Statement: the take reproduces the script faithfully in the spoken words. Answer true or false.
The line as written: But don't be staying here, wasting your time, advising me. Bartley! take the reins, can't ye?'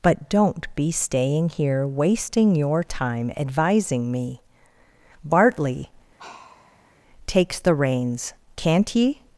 false